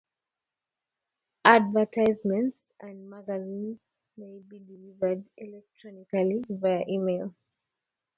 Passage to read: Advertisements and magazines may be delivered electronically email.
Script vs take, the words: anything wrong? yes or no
yes